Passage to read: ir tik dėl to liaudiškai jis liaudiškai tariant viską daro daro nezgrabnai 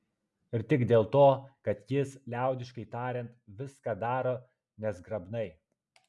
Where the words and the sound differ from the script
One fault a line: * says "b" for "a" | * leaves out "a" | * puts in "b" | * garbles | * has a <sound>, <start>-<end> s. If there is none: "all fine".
* says "kad" for "liaudiškai"
* leaves out "daro"